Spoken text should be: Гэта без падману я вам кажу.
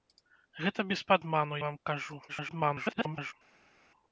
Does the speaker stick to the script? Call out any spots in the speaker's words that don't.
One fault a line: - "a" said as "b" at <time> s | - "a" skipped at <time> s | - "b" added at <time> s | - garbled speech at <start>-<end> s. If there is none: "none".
- "я" skipped at 1.6 s
- garbled speech at 2.3-3.3 s